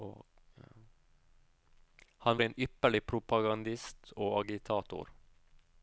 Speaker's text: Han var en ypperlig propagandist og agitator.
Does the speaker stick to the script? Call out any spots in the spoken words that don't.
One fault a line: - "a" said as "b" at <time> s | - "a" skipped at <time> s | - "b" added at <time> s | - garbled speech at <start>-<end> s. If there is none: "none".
- "var" skipped at 2.4 s